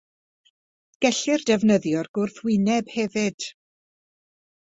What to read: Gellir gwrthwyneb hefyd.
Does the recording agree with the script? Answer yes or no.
no